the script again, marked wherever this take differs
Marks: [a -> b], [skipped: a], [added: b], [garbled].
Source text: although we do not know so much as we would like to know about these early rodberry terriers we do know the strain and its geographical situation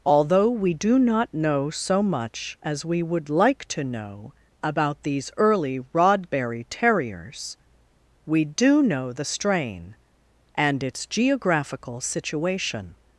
although we do not know so much as we would like to know about these early rodberry terriers we do know the strain and its geographical situation